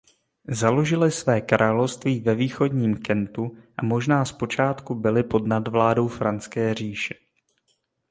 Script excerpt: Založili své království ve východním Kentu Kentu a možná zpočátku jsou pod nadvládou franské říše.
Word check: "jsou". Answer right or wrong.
wrong